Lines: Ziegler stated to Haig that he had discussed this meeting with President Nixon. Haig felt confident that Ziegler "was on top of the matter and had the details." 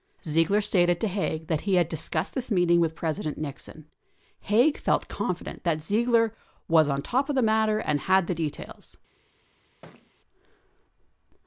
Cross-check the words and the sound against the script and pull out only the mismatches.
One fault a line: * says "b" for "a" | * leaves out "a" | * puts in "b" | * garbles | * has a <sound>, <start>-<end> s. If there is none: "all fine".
* has a thud, 9.8-10.1 s